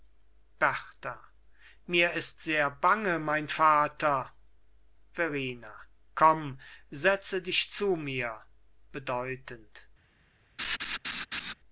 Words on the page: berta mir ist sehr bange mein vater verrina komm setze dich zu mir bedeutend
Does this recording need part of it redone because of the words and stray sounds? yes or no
yes